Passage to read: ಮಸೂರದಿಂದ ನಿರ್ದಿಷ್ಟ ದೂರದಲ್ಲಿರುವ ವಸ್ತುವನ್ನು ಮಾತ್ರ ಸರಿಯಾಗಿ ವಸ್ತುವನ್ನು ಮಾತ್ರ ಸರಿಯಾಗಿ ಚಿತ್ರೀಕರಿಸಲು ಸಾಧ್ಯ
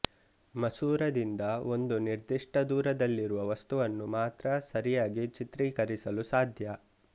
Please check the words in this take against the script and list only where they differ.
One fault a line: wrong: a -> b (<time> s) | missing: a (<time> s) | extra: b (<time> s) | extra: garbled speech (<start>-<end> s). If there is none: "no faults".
extra: ಒಂದು (1.7 s)
missing: ವಸ್ತುವನ್ನು ಮಾತ್ರ ಸರಿಯಾಗಿ (5.2 s)